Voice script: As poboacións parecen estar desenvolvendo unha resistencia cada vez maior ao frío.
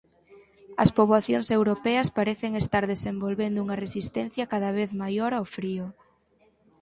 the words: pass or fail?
fail